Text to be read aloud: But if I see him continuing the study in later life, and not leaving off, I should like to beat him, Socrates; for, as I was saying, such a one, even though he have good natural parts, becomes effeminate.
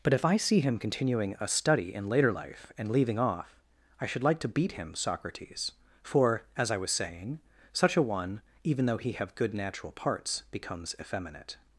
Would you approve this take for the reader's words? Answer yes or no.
no